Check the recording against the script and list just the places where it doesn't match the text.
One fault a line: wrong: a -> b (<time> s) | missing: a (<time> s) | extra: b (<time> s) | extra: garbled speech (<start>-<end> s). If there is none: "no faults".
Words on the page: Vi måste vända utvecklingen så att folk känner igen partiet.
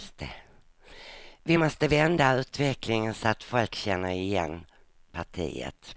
no faults